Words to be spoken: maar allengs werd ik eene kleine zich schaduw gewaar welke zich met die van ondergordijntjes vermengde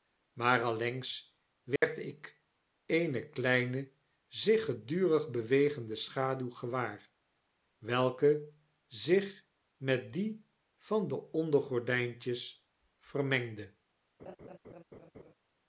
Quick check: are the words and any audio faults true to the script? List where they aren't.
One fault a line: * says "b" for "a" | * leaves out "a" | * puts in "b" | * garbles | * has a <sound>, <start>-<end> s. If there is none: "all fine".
* has a dropout, 1.8-1.8 s
* puts in "gedurig bewegende"
* puts in "de"
* has a laugh, 14.2-15.3 s